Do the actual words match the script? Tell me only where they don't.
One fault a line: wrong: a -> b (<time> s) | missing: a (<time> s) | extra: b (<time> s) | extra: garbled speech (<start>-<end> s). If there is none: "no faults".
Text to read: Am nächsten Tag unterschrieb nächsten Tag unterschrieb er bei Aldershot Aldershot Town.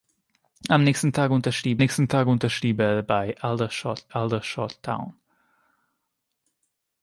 no faults